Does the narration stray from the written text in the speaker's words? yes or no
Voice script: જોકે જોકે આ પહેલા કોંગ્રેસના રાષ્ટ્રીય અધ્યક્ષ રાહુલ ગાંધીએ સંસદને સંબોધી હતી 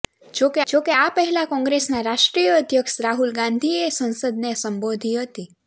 no